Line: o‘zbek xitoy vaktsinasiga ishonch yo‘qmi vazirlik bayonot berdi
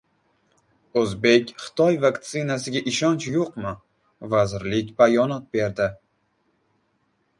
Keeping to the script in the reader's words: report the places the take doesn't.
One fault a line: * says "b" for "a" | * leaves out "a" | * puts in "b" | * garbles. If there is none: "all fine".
all fine